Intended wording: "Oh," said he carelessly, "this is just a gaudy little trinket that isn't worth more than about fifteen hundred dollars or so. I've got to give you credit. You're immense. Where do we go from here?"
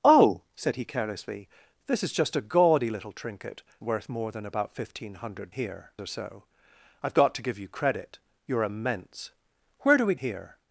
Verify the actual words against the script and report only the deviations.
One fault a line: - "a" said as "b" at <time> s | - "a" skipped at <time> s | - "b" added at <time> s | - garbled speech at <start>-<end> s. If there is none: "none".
- "that isn't" skipped at 3.6 s
- "dollars" said as "here" at 5.5 s
- "go from" skipped at 10.1 s